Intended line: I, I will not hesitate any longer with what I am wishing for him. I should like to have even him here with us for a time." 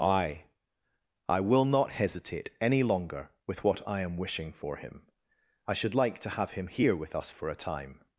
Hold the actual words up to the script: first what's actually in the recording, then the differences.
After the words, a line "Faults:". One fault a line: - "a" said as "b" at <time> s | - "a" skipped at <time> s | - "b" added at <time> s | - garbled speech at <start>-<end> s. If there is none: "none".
I, I will not hesitate any longer with what I am wishing for him. I should like to have him here with us for a time."
Faults:
- "even" skipped at 6.5 s